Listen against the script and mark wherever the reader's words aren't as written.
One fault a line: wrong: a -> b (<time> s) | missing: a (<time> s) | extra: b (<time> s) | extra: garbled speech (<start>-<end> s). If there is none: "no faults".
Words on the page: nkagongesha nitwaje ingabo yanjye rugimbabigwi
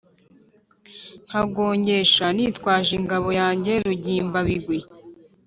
no faults